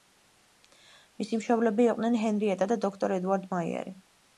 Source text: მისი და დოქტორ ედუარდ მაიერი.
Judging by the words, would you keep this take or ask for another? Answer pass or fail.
fail